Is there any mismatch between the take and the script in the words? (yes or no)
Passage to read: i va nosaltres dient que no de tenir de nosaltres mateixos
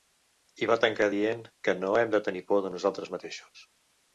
yes